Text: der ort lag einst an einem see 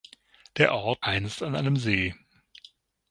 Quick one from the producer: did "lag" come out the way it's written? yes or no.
no